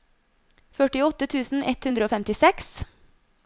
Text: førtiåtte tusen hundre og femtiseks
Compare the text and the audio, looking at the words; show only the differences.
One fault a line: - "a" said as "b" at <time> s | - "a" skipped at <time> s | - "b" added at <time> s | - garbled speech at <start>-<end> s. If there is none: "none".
- "ett" added at 1.8 s